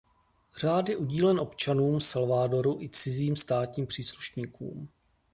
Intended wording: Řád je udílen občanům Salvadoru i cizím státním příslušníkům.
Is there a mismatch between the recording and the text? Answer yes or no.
no